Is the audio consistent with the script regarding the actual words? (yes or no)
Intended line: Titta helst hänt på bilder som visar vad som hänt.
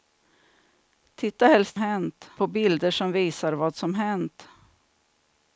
yes